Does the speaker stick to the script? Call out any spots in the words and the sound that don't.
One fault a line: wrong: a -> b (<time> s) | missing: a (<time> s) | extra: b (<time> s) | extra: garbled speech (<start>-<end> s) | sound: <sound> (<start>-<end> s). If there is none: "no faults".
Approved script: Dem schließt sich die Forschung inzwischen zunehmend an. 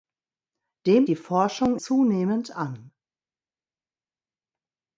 missing: schließt sich (1.1 s)
missing: inzwischen (1.8 s)